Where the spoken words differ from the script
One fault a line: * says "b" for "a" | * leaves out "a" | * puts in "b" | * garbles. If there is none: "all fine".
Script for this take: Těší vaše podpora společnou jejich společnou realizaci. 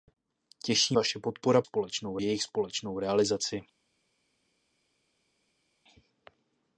all fine